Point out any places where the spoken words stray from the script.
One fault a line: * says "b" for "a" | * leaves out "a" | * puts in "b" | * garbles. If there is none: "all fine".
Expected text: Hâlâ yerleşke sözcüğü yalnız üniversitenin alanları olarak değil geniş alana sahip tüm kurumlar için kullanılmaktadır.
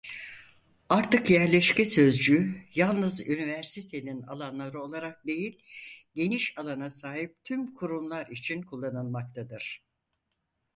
* says "Artık" for "Hâlâ"